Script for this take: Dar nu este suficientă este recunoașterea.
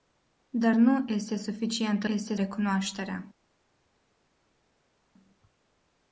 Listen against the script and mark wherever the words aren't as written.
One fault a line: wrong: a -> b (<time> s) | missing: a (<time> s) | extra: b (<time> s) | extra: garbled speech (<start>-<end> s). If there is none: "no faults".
no faults